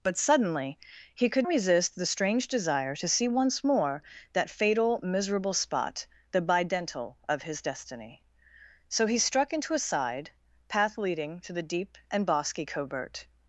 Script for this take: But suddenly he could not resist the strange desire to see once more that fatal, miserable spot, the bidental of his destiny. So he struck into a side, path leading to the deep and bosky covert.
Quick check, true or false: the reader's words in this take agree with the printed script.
false